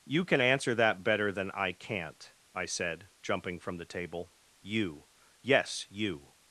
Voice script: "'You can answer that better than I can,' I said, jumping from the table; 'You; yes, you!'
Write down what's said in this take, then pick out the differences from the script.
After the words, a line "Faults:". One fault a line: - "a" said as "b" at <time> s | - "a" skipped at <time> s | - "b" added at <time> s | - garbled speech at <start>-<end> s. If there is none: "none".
"'You can answer that better than I can't,' I said, jumping from the table; 'You; yes, you!'
Faults:
- "can" said as "can't" at 1.7 s